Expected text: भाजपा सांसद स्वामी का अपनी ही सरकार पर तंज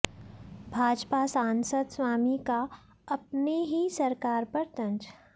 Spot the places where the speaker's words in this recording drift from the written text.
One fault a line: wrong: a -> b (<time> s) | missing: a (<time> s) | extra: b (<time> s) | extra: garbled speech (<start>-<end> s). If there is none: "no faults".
no faults